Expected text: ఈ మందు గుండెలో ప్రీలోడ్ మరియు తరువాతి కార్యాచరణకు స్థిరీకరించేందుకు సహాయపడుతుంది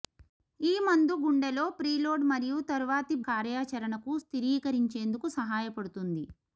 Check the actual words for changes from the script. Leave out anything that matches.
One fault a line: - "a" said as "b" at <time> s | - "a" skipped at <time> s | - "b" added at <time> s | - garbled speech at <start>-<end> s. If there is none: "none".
none